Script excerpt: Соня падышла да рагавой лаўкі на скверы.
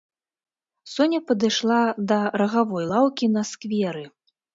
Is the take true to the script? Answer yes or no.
yes